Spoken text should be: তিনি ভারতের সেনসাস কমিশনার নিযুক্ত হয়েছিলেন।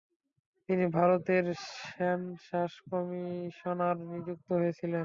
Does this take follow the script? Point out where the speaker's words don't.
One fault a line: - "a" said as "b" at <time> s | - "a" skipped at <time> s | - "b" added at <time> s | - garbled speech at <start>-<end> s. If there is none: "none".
none